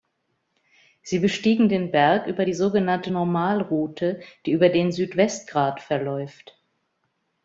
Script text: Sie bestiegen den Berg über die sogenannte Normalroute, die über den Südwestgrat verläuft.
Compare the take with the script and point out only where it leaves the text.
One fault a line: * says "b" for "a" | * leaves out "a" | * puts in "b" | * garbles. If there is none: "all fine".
all fine